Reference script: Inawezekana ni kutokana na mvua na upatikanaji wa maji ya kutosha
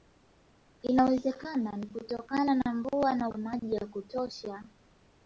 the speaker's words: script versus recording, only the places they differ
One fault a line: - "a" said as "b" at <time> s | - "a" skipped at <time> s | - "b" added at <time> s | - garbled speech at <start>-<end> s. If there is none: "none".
- "upatikanaji" skipped at 3.3 s